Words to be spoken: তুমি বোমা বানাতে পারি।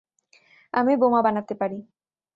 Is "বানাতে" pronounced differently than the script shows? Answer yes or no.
no